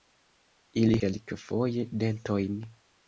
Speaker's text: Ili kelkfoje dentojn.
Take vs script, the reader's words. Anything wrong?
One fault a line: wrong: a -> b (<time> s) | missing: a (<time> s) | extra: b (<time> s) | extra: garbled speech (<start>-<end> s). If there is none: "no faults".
no faults